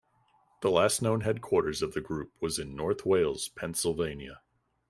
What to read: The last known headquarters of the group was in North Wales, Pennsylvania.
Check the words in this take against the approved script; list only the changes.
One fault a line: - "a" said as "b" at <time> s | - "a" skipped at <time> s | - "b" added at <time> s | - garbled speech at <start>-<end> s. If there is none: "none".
none